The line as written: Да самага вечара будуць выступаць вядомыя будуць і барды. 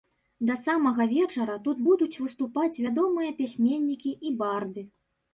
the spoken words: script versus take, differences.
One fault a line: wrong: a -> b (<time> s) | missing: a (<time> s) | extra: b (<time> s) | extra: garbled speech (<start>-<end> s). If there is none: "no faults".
extra: тут (1.7 s)
wrong: будуць -> пісьменнікі (3.4 s)